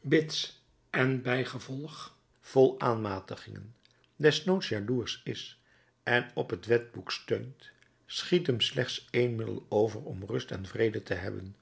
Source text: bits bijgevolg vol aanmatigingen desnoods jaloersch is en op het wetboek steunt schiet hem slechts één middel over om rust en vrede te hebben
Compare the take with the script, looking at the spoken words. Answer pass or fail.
fail